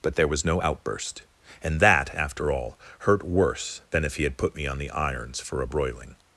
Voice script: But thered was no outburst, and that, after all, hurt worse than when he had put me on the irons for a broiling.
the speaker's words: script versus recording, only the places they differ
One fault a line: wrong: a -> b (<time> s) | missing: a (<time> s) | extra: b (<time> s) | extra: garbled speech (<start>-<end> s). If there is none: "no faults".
wrong: thered -> there (0.1 s)
wrong: when -> if (4.0 s)